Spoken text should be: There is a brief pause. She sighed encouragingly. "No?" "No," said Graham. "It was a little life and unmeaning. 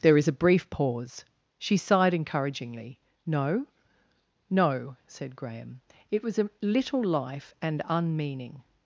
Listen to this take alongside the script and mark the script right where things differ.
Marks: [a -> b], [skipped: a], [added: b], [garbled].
There is a brief pause. She sighed encouragingly. "No?" "No," said Graham. "It was a little life and unmeaning.